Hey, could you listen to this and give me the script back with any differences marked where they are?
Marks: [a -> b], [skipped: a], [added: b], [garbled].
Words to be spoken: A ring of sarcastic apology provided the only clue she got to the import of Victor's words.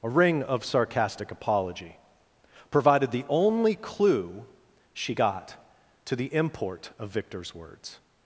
A ring of sarcastic apology provided the only clue she got to the import of Victor's words.